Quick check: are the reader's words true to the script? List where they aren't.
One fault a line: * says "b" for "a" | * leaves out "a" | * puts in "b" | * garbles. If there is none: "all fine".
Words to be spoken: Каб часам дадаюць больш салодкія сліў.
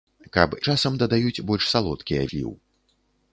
all fine